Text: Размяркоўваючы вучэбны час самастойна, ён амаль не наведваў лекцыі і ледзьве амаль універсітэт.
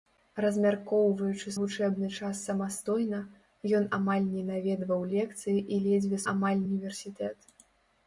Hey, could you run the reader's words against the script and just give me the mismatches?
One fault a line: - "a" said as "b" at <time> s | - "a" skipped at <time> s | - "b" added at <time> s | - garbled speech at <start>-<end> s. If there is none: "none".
none